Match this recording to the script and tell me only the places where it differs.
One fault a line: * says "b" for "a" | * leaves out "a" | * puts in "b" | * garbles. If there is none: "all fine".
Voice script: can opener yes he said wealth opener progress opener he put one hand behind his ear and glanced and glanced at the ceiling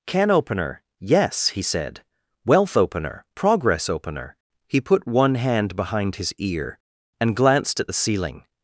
* leaves out "and glanced"